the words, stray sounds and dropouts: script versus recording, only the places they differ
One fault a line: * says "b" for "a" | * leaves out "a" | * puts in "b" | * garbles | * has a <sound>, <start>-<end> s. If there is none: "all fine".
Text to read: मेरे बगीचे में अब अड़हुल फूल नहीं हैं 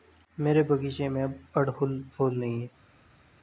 all fine